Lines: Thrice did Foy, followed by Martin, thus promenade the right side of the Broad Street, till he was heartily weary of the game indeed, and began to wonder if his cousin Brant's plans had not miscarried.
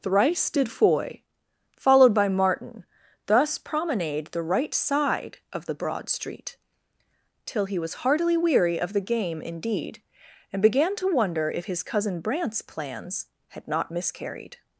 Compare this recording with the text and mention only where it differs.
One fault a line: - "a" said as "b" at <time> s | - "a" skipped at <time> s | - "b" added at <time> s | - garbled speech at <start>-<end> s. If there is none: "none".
none